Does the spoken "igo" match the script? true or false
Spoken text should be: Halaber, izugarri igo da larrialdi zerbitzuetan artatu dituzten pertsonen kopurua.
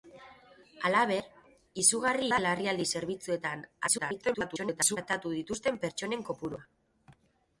false